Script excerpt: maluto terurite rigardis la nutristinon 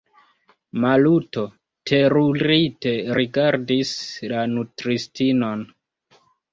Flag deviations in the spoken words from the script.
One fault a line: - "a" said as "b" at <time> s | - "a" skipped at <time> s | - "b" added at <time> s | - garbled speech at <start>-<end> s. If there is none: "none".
none